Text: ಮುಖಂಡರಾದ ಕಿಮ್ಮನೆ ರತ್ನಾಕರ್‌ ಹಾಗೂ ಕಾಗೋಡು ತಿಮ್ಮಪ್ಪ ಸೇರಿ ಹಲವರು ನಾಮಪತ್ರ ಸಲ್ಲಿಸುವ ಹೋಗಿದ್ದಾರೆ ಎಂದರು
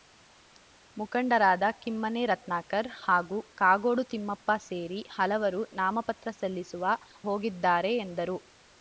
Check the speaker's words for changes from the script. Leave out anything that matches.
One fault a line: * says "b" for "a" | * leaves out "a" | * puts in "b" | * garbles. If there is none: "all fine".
all fine